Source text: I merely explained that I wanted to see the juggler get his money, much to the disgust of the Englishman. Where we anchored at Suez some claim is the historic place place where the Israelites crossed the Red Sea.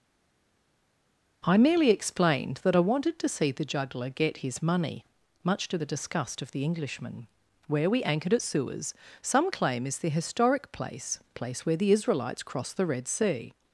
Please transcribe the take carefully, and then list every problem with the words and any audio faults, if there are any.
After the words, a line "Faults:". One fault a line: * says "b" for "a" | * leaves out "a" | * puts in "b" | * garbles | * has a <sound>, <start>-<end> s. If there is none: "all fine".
I merely explained that I wanted to see the juggler get his money, much to the disgust of the Englishman. Where we anchored at Suez some claim is the historic place place where the Israelites crossed the Red Sea.
Faults:
all fine